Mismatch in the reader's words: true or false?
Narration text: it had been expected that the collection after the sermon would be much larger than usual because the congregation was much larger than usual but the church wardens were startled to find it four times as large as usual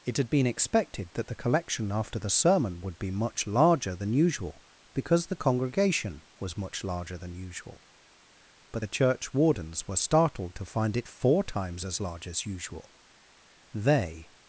true